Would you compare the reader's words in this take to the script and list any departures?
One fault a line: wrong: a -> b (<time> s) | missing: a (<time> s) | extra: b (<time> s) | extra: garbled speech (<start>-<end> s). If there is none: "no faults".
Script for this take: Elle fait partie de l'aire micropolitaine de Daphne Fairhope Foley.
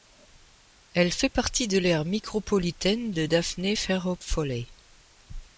no faults